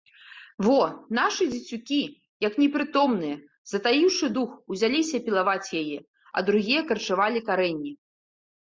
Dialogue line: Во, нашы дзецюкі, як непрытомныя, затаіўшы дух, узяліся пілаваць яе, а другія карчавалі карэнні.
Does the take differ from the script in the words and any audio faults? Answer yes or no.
no